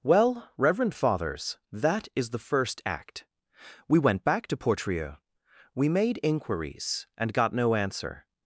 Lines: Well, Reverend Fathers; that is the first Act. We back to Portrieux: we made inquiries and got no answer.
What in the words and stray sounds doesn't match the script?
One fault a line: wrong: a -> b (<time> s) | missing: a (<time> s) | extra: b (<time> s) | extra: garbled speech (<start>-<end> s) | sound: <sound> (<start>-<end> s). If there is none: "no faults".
extra: went (4.0 s)